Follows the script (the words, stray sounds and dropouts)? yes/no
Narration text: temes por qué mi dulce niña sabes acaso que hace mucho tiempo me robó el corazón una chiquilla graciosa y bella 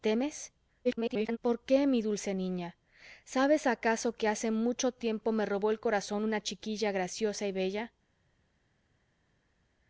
no